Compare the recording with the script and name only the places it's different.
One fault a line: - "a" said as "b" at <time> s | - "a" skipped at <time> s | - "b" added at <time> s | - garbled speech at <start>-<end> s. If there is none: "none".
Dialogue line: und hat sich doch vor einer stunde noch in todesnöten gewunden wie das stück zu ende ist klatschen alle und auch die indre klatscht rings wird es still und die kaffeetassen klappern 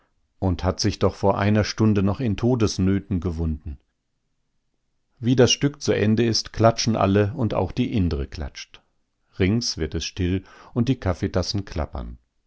none